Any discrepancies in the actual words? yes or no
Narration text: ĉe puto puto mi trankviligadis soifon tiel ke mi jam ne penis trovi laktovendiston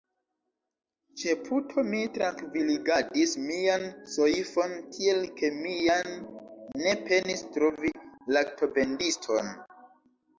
yes